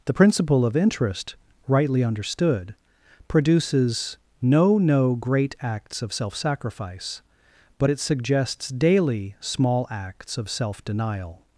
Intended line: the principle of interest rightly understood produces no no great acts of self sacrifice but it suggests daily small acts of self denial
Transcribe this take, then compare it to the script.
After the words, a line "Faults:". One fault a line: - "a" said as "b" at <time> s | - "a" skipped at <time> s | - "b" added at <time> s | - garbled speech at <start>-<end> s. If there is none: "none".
the principle of interest rightly understood produces no no great acts of self sacrifice but it suggests daily small acts of self denial
Faults:
none